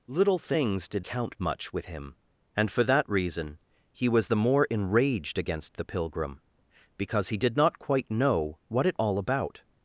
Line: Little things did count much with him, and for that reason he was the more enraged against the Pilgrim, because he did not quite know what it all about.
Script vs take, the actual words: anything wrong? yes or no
no